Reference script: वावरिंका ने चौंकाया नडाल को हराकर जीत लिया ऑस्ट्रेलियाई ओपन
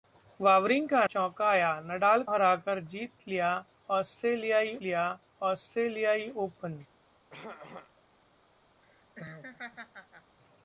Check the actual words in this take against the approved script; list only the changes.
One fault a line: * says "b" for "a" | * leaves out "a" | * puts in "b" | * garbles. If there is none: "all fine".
* leaves out "ने"
* leaves out "को"
* puts in "लिया ऑस्ट्रेलियाई"